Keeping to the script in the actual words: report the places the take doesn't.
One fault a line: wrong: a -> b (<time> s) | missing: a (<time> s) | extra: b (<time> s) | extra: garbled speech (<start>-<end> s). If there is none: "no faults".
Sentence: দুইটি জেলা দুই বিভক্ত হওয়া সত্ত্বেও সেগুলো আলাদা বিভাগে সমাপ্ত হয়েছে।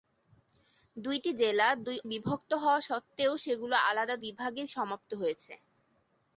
no faults